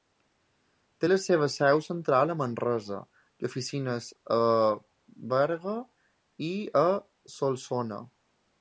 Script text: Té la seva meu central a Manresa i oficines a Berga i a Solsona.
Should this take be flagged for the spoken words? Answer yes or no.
yes